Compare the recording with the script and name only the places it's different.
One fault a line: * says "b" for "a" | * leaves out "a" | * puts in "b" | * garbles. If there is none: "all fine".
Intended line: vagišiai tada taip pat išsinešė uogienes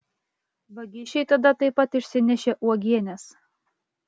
all fine